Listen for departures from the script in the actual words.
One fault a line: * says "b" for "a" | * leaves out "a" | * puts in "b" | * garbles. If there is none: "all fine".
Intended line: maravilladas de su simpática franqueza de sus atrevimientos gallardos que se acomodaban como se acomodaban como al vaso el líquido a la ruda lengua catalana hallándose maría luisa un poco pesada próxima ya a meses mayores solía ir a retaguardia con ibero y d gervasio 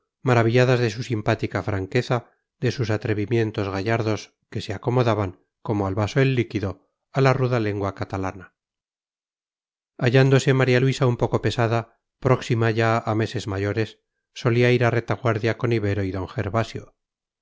* leaves out "se acomodaban como"